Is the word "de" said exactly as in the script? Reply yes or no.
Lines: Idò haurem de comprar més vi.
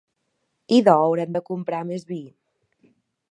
yes